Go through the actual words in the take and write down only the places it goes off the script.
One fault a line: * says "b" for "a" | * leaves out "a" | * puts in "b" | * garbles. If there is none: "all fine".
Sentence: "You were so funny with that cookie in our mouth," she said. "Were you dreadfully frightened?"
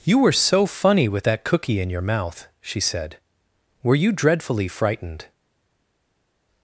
* says "your" for "our"